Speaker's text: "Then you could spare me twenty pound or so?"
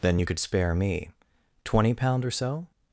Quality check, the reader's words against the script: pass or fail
pass